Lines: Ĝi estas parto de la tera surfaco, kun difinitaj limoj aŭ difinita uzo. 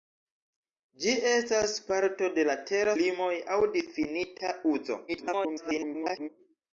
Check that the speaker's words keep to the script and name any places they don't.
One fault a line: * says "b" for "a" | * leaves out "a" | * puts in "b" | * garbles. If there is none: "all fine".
* leaves out "surfaco kun difinitaj"
* garbles